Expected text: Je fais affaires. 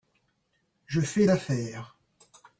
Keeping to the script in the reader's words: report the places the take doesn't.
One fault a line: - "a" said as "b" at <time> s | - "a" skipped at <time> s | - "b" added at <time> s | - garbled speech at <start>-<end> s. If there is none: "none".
none